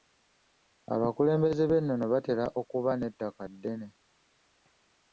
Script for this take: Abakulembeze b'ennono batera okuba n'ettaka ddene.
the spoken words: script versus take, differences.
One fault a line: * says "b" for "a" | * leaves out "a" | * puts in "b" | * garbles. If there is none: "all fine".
all fine